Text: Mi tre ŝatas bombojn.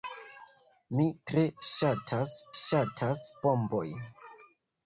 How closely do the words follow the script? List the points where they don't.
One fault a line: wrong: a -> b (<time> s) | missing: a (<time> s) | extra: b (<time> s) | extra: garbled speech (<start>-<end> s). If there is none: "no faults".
extra: ŝatas (2.6 s)